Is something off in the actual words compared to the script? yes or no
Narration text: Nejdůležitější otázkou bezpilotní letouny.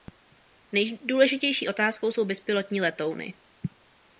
yes